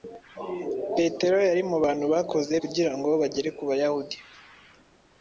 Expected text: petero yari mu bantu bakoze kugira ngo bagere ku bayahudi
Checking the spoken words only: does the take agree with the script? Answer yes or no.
yes